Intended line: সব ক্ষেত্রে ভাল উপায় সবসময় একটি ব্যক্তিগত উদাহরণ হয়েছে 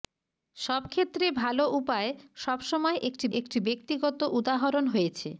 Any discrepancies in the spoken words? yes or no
yes